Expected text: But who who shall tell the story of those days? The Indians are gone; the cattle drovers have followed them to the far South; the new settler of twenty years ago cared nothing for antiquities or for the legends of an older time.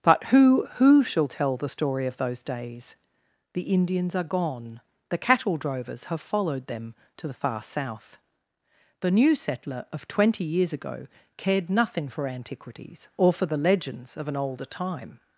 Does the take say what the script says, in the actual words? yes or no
yes